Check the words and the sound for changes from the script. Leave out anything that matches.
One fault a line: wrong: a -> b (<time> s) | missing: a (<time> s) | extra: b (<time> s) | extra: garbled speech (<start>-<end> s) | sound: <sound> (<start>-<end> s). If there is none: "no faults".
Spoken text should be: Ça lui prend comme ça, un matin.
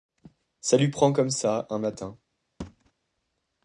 sound: thud (2.6-2.9 s)